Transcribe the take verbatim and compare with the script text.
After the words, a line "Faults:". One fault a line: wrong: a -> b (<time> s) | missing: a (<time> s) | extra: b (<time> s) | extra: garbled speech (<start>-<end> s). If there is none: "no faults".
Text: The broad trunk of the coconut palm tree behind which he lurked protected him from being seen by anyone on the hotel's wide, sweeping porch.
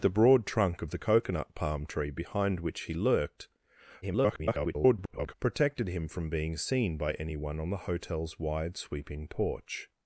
The broad trunk of the coconut palm tree behind which he lurked [garbled] protected him from being seen by anyone on the hotel's wide, sweeping porch.
Faults:
extra: garbled speech (4.0-5.3 s)